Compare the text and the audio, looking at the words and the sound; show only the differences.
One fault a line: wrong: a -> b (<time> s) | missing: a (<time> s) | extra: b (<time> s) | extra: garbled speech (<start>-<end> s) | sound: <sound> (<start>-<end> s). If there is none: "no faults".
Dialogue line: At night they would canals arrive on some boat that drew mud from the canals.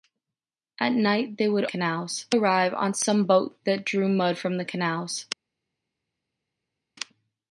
no faults